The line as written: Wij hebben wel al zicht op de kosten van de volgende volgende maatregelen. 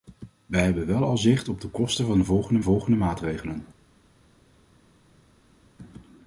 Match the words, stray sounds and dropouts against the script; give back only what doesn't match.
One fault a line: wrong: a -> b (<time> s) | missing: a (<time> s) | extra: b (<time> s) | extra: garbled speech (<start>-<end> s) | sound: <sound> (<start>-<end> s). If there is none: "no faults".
no faults